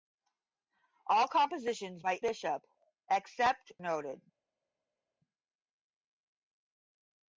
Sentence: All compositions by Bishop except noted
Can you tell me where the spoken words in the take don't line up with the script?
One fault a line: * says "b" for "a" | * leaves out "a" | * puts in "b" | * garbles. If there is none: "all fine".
all fine